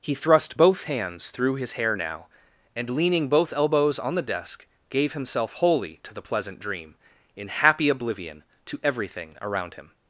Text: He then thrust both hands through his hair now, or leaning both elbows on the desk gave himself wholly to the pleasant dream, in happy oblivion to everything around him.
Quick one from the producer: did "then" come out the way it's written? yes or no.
no